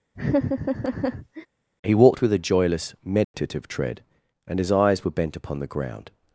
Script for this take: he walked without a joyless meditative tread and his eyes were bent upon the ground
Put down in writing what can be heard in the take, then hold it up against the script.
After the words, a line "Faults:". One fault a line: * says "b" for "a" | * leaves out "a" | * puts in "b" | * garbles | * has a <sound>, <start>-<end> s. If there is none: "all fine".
he walked with a joyless meditative tread and his eyes were bent upon the ground
Faults:
* has a laugh, 0.1-1.5 s
* says "with" for "without"
* has a dropout, 3.2-3.3 s